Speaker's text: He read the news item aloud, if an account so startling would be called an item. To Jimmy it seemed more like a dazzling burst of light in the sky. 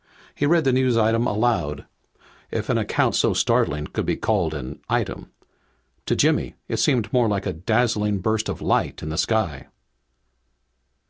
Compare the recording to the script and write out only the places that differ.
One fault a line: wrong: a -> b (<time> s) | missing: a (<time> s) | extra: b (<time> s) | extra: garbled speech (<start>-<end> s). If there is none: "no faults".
wrong: would -> could (3.9 s)